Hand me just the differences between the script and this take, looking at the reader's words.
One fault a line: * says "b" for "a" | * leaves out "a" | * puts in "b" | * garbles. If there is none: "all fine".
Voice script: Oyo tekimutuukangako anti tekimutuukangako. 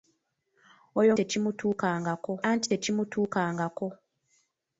all fine